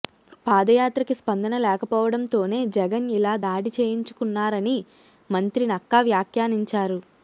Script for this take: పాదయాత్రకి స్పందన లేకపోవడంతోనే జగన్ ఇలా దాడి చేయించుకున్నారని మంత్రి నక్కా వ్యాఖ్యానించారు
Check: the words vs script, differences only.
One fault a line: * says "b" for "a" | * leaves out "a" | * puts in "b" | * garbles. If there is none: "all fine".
all fine